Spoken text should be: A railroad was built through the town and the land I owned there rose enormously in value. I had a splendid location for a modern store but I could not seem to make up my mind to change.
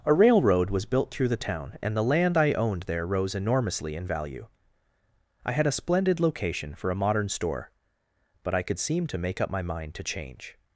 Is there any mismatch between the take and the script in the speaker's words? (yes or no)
yes